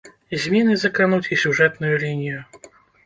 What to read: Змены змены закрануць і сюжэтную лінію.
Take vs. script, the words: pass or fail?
fail